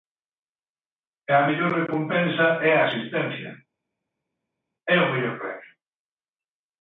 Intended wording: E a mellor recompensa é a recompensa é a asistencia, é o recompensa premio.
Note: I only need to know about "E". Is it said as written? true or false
true